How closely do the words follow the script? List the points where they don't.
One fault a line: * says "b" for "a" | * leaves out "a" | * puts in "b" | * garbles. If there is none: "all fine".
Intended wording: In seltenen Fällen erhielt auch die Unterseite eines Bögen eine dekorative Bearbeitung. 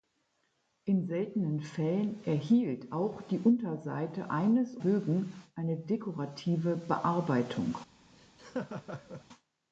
all fine